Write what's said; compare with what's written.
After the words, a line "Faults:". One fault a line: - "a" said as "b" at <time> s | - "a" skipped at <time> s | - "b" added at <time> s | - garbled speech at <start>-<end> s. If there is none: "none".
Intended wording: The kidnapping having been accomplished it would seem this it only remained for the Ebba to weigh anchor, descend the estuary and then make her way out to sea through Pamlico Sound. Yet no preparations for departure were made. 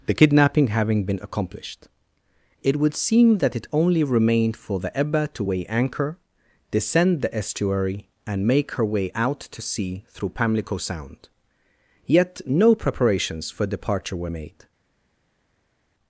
The kidnapping having been accomplished it would seem that it only remained for the Ebba to weigh anchor, descend the estuary and make her way out to sea through Pamlico Sound. Yet no preparations for departure were made.
Faults:
- "this" said as "that" at 3.4 s
- "then" skipped at 8.5 s